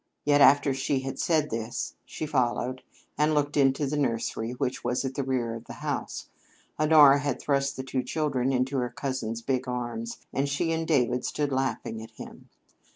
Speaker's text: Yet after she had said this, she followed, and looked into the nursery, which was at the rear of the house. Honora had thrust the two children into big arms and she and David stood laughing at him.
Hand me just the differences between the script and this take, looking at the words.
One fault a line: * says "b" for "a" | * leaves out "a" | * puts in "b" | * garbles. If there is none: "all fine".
* puts in "her cousin's"